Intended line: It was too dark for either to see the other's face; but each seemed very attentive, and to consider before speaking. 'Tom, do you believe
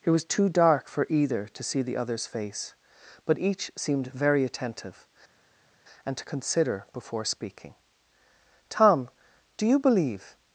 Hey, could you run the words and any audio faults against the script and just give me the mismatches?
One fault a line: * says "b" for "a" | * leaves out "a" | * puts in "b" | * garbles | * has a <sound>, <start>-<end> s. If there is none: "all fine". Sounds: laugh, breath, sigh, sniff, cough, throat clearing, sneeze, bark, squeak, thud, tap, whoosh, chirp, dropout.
all fine